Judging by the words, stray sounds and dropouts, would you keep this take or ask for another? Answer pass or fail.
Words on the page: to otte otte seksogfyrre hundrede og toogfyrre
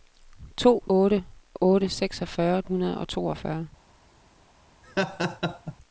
fail